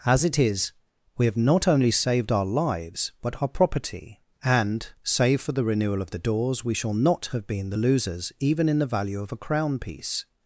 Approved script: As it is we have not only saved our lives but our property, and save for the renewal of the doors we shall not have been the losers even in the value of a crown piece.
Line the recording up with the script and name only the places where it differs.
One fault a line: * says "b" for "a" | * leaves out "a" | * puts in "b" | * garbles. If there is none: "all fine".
all fine